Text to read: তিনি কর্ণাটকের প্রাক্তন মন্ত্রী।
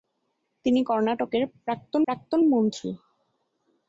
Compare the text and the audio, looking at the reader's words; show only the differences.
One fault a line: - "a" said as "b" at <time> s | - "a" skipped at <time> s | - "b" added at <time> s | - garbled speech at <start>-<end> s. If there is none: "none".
- "প্রাক্তন" added at 2.1 s